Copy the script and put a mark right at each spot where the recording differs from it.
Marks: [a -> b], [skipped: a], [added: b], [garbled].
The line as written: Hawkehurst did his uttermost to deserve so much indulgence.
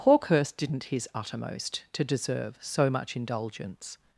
Hawkehurst [did -> didn't] his uttermost to deserve so much indulgence.